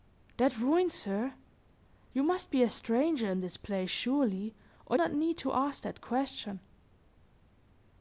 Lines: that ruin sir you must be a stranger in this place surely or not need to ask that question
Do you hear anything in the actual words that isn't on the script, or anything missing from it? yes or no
no